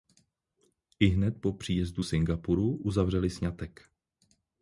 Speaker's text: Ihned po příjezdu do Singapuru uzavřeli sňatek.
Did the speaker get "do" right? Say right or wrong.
wrong